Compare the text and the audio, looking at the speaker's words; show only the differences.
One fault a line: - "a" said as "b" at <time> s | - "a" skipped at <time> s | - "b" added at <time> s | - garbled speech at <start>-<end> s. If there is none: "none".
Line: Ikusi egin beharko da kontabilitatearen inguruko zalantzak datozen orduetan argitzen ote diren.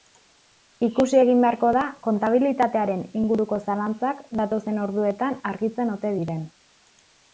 none